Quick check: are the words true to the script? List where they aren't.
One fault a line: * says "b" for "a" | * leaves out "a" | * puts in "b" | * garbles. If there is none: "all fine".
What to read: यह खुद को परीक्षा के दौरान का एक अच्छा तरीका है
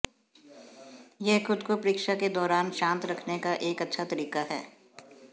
* puts in "शांत रखने"